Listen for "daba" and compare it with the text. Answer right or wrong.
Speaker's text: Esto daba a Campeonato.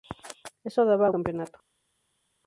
right